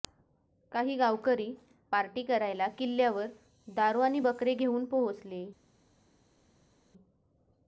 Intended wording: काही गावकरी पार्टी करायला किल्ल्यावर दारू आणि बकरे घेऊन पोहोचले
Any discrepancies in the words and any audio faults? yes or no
no